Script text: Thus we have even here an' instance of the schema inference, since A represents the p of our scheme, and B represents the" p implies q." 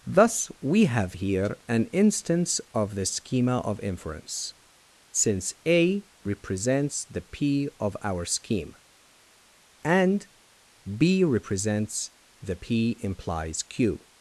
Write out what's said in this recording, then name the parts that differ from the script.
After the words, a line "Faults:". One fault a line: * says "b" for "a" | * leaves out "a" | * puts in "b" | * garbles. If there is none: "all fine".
Thus we have here an' instance of the schema of inference, since A represents the p of our scheme, and B represents the" p implies q."
Faults:
* leaves out "even"
* puts in "of"